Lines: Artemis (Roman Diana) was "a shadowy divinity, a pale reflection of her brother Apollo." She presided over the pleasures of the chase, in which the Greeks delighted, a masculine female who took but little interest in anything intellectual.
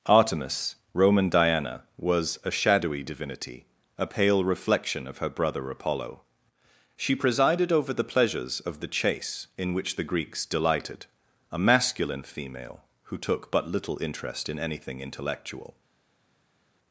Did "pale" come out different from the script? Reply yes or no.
no